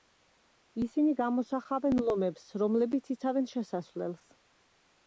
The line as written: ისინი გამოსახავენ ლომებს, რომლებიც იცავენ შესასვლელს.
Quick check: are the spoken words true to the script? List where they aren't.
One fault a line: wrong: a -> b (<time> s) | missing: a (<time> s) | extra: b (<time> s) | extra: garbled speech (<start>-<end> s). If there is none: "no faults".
no faults